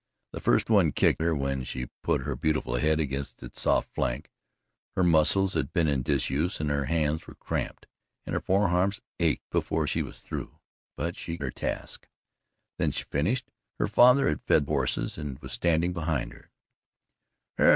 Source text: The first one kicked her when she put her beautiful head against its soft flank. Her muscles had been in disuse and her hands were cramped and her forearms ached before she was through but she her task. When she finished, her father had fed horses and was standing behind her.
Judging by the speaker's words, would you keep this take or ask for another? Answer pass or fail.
pass